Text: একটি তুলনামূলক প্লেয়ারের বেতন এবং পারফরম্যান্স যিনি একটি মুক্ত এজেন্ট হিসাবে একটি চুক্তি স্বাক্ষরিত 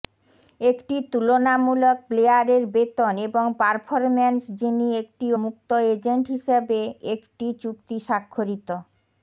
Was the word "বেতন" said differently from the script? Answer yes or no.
no